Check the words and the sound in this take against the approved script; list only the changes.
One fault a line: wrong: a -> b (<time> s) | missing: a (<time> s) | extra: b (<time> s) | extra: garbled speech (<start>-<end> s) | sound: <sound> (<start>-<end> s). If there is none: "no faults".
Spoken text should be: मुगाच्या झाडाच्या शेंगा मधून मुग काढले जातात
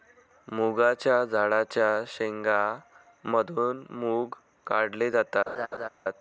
sound: laugh (5.5-5.9 s)